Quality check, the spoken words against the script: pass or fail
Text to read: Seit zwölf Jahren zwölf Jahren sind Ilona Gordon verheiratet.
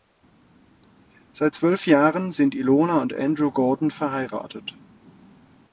fail